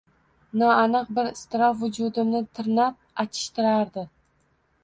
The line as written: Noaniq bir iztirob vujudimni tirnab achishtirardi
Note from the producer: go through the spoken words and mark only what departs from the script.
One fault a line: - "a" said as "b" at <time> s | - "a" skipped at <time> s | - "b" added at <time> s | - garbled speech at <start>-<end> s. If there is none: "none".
none